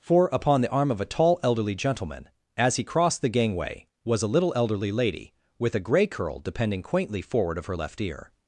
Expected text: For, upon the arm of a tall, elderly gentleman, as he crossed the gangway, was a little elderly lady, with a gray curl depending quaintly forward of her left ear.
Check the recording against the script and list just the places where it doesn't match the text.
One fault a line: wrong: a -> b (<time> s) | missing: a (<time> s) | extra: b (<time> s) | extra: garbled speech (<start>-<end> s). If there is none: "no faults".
no faults